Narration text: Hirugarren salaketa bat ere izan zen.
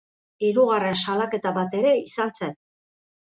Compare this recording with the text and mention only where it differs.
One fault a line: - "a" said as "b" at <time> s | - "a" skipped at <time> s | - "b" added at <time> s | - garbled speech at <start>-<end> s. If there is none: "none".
none